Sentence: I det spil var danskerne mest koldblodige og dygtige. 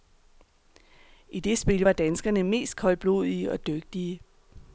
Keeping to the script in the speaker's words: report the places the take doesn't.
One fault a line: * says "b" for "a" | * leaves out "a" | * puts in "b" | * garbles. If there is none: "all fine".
all fine